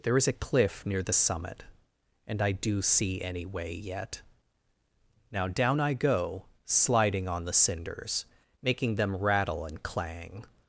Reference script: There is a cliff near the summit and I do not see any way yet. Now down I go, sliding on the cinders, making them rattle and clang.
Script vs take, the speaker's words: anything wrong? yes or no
yes